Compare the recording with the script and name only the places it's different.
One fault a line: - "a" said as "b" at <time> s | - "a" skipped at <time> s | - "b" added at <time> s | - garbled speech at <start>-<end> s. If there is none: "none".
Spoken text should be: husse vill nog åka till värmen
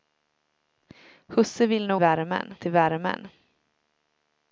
- "åka" said as "värmen" at 2.0 s